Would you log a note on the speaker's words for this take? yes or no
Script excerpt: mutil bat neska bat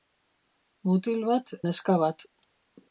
no